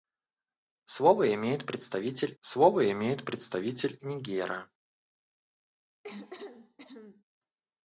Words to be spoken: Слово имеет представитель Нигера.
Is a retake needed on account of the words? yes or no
yes